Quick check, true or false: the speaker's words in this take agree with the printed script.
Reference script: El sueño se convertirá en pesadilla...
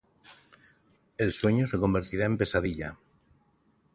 true